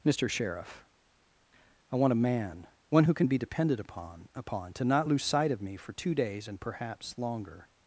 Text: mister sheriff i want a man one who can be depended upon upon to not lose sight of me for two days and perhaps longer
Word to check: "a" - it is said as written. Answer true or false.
true